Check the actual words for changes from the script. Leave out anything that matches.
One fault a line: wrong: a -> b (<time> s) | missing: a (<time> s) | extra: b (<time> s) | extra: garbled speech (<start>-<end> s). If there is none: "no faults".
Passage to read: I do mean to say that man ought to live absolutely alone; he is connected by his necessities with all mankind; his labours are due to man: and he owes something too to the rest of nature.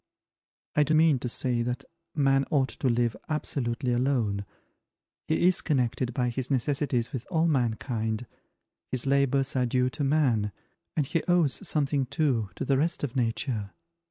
no faults